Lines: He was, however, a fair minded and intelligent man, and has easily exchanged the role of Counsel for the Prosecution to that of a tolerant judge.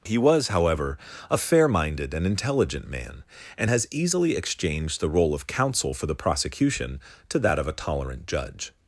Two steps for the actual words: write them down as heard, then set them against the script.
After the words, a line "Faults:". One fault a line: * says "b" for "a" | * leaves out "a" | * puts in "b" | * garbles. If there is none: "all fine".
He was, however, a fair minded and intelligent man, and has easily exchanged the role of Counsel for the Prosecution to that of a tolerant judge.
Faults:
all fine